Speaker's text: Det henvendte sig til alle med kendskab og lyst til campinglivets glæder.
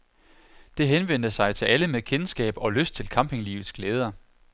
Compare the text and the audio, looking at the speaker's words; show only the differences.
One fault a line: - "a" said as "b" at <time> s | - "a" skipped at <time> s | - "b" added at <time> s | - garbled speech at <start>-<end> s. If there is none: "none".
none